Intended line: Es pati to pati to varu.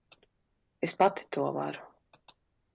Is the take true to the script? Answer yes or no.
no